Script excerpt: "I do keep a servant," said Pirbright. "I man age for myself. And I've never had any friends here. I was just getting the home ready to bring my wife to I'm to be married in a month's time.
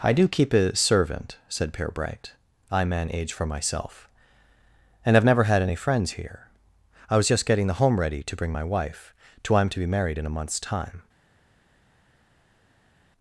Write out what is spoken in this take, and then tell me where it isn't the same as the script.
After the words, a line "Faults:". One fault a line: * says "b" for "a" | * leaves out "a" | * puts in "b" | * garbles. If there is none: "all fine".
"I do keep a servant," said Pirbright. "I man age for myself. And I've never had any friends here. I was just getting the home ready to bring my wife to I'm to be married in a month's time.
Faults:
all fine